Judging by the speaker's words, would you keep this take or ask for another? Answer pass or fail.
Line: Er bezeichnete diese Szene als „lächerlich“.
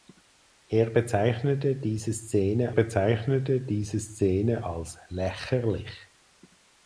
fail